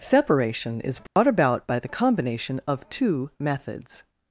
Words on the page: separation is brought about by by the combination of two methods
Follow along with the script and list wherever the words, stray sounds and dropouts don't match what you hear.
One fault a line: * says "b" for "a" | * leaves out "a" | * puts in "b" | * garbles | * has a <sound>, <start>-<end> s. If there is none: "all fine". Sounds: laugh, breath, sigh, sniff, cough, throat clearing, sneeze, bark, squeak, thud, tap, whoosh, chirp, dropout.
* has a dropout, 1.1-1.2 s
* leaves out "by"